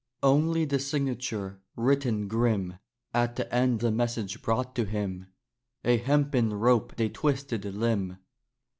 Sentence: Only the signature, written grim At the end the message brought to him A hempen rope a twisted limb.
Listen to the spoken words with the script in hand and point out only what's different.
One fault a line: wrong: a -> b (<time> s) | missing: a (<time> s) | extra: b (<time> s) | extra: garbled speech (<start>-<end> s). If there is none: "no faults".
no faults